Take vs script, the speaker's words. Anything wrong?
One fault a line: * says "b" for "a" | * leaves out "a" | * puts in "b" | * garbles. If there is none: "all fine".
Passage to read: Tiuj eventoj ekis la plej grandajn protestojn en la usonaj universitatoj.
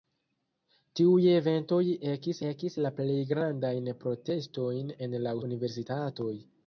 * puts in "ekis"
* leaves out "usonaj"